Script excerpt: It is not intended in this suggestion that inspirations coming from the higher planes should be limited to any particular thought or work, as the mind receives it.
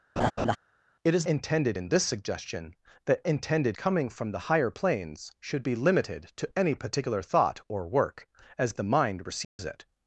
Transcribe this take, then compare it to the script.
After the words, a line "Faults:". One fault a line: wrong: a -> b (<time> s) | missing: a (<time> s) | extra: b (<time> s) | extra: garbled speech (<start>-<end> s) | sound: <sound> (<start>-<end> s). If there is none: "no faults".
It is intended in this suggestion that intended coming from the higher planes should be limited to any particular thought or work, as the mind receives it.
Faults:
sound: laugh (0.2-0.6 s)
missing: not (1.3 s)
wrong: inspirations -> intended (3.2 s)
sound: dropout (9.4-9.6 s)